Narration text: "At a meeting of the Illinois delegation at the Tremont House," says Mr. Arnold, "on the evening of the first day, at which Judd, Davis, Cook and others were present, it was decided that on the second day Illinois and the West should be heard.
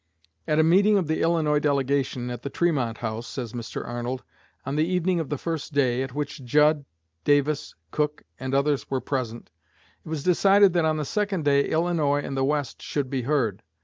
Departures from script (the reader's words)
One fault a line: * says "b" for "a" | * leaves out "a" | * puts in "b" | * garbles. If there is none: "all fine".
all fine